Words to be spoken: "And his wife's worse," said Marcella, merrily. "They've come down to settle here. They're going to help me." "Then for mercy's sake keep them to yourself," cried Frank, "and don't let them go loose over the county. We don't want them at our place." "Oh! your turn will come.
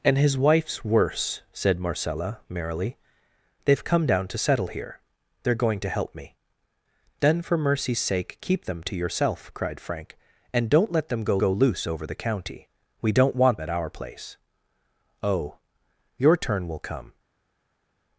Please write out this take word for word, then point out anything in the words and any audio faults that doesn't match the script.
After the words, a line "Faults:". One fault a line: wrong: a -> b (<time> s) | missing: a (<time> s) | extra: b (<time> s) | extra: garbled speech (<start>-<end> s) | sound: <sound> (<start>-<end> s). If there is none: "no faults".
"And his wife's worse," said Marcella, merrily. "They've come down to settle here. They're going to help me." "Then for mercy's sake keep them to yourself," cried Frank, "and don't let them go go loose over the county. We don't want at our place." "Oh! your turn will come.
Faults:
extra: go (11.4 s)
missing: them (13.6 s)